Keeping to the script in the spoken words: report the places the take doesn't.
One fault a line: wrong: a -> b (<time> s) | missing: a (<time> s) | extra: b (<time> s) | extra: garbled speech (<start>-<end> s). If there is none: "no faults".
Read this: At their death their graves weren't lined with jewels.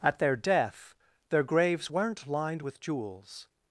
no faults